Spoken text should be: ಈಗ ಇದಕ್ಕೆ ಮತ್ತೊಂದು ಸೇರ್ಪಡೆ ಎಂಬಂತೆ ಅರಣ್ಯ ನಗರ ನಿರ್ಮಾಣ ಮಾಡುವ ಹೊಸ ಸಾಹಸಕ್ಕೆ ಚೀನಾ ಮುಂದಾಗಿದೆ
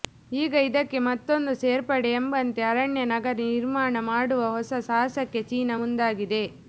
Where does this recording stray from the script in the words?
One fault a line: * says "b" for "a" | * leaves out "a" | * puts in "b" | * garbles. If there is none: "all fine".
all fine